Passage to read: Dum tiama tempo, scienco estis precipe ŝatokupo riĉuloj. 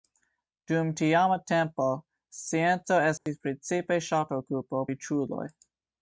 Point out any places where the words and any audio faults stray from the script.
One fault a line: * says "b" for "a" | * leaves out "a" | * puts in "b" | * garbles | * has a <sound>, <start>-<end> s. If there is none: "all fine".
* has a dropout, 3.2-3.3 s